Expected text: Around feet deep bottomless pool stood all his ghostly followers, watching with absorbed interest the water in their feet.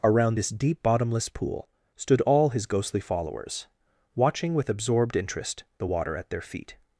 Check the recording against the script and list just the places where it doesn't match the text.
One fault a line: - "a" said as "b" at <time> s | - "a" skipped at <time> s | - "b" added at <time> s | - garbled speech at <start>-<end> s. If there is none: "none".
- "feet" said as "this" at 0.3 s
- "in" said as "at" at 6.2 s